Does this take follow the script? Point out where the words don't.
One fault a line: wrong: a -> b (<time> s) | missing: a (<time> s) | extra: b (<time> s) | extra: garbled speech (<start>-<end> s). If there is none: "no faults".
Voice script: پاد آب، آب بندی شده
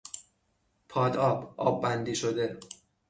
no faults